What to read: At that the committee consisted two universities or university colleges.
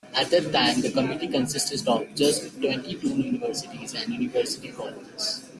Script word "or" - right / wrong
wrong